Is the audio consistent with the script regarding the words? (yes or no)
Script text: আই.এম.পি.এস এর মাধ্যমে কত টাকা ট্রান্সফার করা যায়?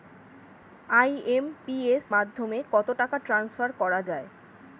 no